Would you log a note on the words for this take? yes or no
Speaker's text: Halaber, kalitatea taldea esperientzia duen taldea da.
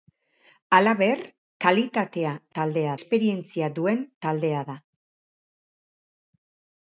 no